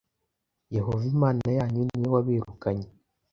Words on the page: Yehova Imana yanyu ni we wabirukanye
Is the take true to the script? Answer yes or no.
yes